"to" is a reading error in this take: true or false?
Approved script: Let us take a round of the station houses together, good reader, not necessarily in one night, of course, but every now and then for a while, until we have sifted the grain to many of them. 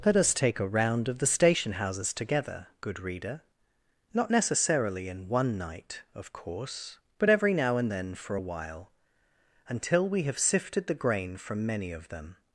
true